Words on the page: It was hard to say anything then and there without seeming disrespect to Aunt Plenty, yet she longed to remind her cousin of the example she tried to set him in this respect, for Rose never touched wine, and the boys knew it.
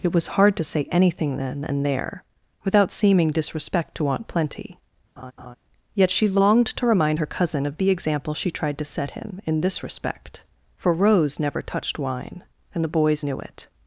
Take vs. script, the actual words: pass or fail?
pass